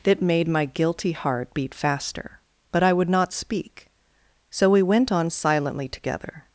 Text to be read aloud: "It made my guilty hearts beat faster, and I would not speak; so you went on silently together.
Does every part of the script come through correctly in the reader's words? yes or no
no